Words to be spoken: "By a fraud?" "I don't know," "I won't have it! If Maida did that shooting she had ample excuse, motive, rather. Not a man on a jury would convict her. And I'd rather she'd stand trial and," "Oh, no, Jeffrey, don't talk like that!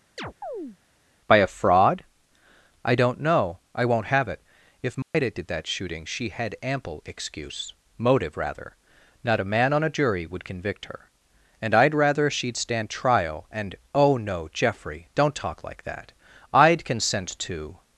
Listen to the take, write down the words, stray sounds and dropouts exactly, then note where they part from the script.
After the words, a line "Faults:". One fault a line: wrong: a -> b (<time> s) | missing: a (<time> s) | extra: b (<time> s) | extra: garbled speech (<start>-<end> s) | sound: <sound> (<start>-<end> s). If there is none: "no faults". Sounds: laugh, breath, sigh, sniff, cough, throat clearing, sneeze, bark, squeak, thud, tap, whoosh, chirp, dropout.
"By a fraud?" "I don't know," "I won't have it! If Maida did that shooting she had ample excuse, motive, rather. Not a man on a jury would convict her. And I'd rather she'd stand trial and," "Oh, no, Jeffrey, don't talk like that! I'd consent to
Faults:
sound: chirp (0.2-0.8 s)
sound: dropout (5.0-5.1 s)
extra: I'd consent to (16.5 s)